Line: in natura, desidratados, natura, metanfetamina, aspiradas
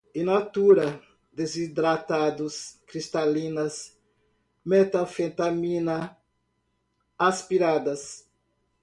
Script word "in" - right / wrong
right